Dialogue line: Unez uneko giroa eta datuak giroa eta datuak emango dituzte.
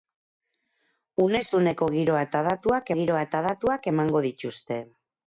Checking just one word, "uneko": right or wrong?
right